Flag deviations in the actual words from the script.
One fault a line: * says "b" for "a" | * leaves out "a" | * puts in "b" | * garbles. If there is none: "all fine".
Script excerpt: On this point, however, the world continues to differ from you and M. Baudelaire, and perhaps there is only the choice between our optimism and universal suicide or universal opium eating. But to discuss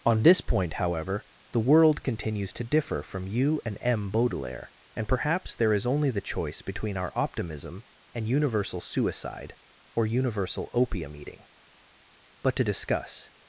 all fine